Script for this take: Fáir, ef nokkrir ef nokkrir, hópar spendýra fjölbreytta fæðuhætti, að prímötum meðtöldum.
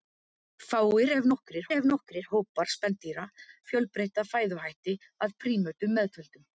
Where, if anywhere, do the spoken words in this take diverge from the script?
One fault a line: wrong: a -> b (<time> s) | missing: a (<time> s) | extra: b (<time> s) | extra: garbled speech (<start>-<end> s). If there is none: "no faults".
no faults